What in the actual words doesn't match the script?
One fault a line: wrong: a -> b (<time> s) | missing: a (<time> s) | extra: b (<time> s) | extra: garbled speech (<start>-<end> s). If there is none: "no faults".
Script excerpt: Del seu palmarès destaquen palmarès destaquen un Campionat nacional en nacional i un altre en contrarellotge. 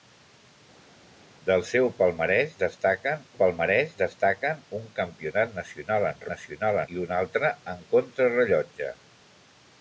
no faults